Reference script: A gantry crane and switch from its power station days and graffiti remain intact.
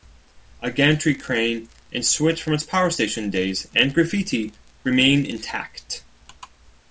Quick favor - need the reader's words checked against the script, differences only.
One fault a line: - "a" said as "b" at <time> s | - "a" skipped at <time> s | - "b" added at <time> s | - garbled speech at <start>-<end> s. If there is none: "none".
none